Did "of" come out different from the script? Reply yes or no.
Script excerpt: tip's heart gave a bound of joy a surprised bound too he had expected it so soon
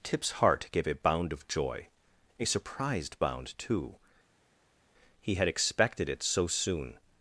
no